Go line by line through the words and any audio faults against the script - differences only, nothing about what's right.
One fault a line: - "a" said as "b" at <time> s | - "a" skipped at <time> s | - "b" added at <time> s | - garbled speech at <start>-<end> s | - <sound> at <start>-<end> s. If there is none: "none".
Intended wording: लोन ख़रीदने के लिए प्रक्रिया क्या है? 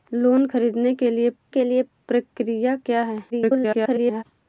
- "के लिए" added at 1.5 s
- garbled speech at 3.3-4.2 s